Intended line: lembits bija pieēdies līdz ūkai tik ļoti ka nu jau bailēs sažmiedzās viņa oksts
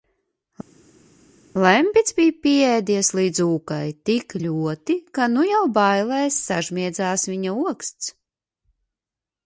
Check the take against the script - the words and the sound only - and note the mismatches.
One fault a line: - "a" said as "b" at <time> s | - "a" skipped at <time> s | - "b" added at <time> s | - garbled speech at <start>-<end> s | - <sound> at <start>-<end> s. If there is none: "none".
none